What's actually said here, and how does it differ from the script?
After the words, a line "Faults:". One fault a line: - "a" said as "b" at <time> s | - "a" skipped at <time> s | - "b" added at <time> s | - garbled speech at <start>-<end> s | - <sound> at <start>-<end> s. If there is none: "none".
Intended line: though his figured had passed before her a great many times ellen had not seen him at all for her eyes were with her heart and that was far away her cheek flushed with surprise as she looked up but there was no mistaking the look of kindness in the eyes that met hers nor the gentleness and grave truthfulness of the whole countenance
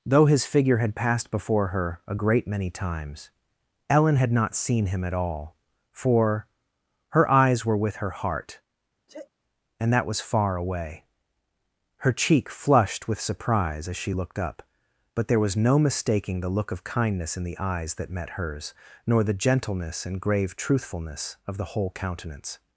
though his figure had passed before her a great many times ellen had not seen him at all for her eyes were with her heart and that was far away her cheek flushed with surprise as she looked up but there was no mistaking the look of kindness in the eyes that met hers nor the gentleness and grave truthfulness of the whole countenance
Faults:
- "figured" said as "figure" at 0.5 s
- sneeze at 9.1-9.3 s